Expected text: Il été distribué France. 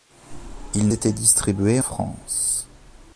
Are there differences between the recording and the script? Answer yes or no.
no